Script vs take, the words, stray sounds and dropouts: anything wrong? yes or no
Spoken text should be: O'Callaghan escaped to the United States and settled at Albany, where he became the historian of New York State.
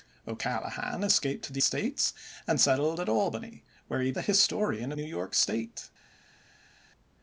yes